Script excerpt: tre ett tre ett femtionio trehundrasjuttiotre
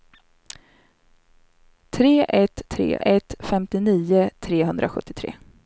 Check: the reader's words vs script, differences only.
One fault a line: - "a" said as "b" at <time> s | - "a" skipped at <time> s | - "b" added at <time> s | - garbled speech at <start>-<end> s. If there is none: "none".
none